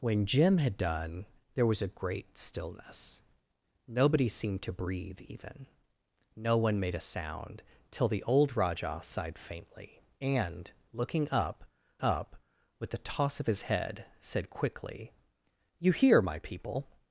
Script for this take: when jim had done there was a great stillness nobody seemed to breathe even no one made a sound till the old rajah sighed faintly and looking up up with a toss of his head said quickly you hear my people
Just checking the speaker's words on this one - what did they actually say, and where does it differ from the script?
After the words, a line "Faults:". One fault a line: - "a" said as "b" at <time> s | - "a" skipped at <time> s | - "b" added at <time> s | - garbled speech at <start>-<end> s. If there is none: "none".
when jim had done there was a great stillness nobody seemed to breathe even no one made a sound till the old rajah sighed faintly and looking up up with a toss of his head said quickly you hear my people
Faults:
none